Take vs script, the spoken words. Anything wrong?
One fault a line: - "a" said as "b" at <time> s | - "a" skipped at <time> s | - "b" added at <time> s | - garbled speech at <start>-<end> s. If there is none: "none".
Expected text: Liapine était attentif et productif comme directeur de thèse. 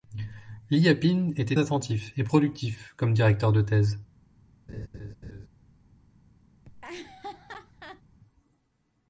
none